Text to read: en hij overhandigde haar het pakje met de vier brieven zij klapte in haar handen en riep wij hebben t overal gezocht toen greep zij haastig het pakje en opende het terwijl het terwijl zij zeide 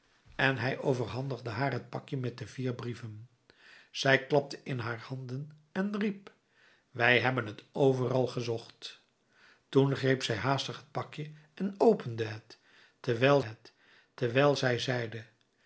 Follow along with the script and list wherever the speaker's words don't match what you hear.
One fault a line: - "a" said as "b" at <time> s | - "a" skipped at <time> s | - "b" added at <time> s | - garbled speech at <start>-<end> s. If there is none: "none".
none